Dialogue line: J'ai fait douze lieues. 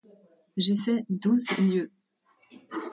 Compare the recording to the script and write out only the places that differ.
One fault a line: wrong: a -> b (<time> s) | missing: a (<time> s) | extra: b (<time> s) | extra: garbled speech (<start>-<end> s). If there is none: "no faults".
no faults